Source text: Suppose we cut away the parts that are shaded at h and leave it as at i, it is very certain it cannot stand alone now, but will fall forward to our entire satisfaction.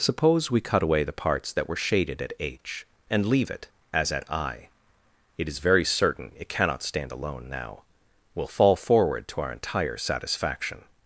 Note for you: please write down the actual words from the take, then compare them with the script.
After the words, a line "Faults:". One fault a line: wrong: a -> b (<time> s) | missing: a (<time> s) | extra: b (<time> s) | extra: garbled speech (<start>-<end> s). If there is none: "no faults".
Suppose we cut away the parts that were shaded at h and leave it as at i, it is very certain it cannot stand alone now, will fall forward to our entire satisfaction.
Faults:
wrong: are -> were (1.7 s)
missing: but (7.8 s)